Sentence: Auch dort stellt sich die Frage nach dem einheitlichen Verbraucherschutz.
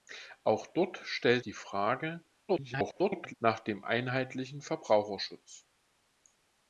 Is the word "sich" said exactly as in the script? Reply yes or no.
no